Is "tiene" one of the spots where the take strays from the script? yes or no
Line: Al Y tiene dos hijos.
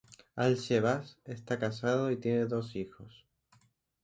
no